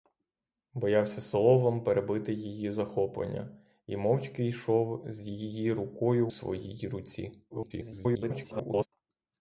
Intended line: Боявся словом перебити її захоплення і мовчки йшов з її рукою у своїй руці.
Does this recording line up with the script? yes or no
no